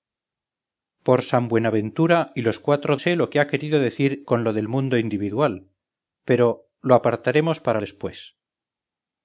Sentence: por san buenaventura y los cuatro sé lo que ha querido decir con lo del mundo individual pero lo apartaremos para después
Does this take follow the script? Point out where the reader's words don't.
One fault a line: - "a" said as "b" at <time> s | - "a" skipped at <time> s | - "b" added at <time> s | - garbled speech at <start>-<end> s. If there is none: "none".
none